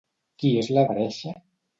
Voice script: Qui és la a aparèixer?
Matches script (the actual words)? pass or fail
pass